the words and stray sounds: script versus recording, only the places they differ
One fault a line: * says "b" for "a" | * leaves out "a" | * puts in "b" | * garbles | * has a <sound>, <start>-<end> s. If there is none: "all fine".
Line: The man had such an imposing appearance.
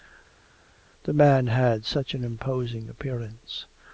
all fine